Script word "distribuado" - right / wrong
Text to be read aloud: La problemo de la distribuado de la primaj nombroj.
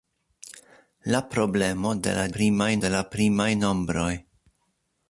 wrong